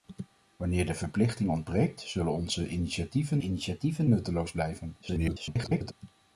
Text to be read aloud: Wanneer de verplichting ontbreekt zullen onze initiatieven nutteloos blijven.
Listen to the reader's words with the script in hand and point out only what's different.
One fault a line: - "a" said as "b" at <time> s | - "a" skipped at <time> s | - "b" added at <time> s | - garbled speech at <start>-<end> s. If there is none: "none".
- "initiatieven" added at 3.4 s
- garbled speech at 5.0-5.9 s